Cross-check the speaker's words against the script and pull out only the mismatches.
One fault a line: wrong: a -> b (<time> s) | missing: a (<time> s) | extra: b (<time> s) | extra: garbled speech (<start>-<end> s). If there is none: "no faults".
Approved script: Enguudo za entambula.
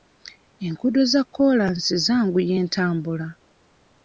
extra: kkoolansi zanguya (1.2 s)